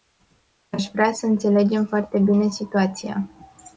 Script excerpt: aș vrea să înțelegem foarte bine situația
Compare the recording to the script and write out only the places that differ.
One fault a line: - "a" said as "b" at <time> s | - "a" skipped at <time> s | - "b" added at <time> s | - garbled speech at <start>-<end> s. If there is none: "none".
none